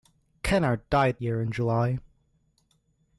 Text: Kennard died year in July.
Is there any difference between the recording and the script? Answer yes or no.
no